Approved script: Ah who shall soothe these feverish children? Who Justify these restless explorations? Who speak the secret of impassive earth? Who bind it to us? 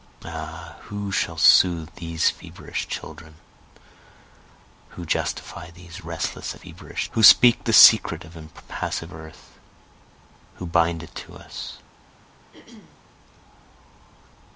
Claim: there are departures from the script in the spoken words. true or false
true